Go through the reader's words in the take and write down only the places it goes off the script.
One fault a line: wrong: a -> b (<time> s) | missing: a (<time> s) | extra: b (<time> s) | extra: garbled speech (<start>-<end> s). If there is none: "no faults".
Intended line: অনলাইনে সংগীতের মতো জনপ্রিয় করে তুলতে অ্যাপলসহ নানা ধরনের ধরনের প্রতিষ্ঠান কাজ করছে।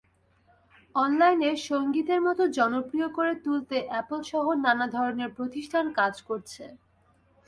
missing: ধরনের (5.3 s)